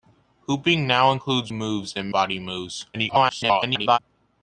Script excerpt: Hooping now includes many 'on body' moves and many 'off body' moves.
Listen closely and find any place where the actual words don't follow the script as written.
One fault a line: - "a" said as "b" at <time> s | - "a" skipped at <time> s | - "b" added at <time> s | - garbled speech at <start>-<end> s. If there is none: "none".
- "many on body" skipped at 1.5 s
- "many off" skipped at 2.1 s
- garbled speech at 2.9-4.0 s